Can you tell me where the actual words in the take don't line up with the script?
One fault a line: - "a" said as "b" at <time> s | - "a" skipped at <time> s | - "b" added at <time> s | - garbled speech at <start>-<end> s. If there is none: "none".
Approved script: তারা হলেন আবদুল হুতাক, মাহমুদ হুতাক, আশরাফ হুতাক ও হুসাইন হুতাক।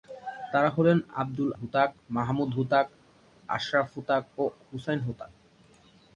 none